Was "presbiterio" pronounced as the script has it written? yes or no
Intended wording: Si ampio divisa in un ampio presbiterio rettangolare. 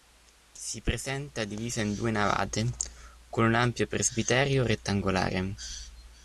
yes